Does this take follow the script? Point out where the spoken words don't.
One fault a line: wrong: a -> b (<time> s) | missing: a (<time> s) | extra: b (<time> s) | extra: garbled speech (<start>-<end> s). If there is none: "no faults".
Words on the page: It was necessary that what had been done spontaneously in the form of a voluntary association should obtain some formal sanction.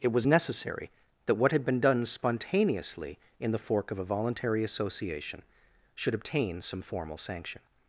wrong: form -> fork (3.6 s)